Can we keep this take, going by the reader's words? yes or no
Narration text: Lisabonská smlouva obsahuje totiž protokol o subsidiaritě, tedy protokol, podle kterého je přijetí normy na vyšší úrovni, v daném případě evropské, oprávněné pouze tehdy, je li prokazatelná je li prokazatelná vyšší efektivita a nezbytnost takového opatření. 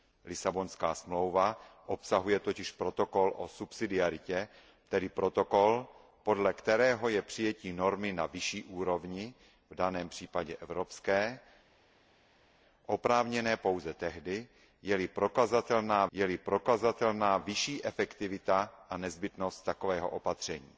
yes